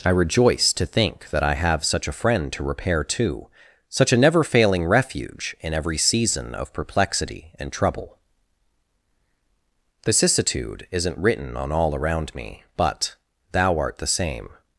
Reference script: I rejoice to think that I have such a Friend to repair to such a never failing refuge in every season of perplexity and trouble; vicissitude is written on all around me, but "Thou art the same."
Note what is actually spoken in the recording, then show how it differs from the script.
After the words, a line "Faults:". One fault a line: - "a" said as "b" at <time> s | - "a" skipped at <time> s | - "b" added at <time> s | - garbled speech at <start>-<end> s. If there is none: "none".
I rejoice to think that I have such a Friend to repair to such a never failing refuge in every season of perplexity and trouble; vicissitude isn't written on all around me, but "Thou art the same."
Faults:
- "is" said as "isn't" at 10.9 s